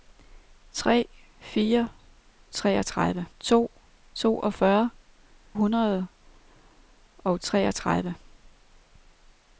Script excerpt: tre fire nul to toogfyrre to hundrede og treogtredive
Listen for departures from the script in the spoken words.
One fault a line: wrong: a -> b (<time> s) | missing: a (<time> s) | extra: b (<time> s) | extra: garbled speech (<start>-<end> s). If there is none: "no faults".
wrong: nul -> treogtredive (2.5 s)
missing: to (4.9 s)